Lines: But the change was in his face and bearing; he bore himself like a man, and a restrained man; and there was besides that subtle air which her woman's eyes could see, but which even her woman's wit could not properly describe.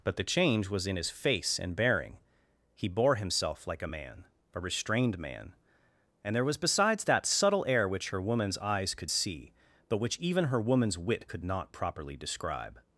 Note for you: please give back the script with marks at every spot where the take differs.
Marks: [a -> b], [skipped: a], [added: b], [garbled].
But the change was in his face and bearing; he bore himself like a man, [skipped: and] a restrained man; and there was besides that subtle air which her woman's eyes could see, but which even her woman's wit could not properly describe.